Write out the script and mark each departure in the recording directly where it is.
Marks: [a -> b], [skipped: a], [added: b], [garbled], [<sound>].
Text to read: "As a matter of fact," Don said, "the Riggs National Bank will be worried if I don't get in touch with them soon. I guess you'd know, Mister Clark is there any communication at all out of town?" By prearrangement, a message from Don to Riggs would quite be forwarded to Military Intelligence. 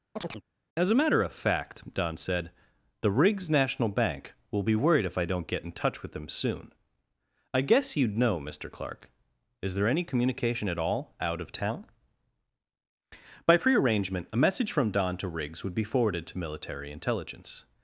[chirp] "As a matter of fact," Don said, "the Riggs National Bank will be worried if I don't get in touch with them soon. I guess you'd know, Mister Clark is there any communication at all out of town?" By prearrangement, a message from Don to Riggs would [skipped: quite] be forwarded to Military Intelligence.